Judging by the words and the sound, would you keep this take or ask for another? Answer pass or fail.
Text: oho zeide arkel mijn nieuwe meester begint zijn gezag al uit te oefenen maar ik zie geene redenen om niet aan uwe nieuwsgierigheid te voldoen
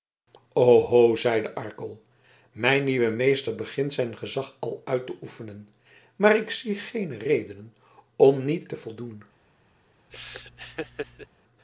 fail